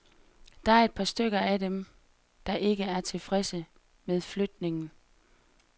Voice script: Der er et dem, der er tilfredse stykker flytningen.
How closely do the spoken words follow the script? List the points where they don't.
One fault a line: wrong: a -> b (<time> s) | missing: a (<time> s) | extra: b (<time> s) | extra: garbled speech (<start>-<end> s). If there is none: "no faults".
extra: par stykker af (0.9 s)
extra: ikke (2.5 s)
wrong: stykker -> med (4.0 s)